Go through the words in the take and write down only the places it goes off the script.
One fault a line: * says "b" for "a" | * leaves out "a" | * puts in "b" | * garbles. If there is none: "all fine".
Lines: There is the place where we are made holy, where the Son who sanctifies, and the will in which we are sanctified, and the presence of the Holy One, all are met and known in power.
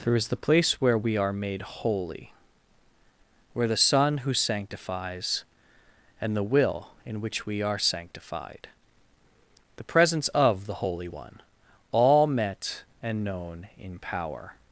* leaves out "and"
* leaves out "are"